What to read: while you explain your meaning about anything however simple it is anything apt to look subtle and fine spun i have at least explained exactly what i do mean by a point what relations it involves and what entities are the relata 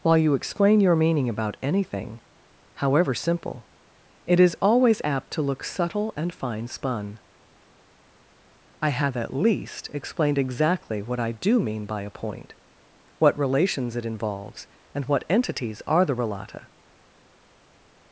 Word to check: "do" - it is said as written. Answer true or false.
true